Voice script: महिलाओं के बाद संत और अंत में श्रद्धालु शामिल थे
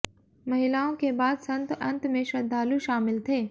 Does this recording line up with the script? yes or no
no